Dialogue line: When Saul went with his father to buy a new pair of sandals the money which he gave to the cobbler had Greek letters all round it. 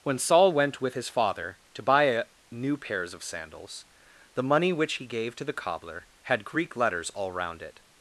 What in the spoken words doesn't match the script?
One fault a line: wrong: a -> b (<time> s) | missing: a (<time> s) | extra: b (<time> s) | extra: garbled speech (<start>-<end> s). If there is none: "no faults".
wrong: pair -> pairs (2.8 s)